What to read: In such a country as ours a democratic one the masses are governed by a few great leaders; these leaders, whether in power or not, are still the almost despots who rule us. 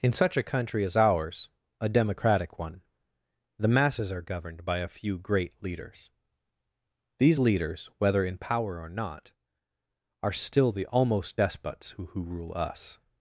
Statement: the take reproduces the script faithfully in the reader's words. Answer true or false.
false